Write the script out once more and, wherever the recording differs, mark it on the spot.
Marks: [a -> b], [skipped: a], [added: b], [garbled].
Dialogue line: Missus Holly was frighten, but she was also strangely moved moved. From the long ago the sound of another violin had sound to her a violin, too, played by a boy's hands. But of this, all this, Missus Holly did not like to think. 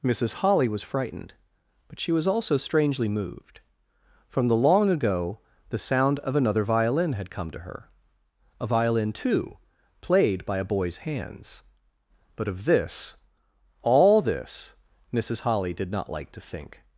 Missus Holly was [frighten, -> frightened] but she was also strangely moved [skipped: moved.] From the long ago the sound of another violin had [sound -> come] to her a violin, too, played by a boy's hands. But of this, all this, Missus Holly did not like to think.